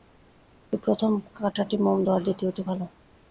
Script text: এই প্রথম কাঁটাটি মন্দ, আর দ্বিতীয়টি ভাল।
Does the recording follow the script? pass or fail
pass